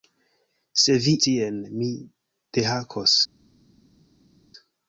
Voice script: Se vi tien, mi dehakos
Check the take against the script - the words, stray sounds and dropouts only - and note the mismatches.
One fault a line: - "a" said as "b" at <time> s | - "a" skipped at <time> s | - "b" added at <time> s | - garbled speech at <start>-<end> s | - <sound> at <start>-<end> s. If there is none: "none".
none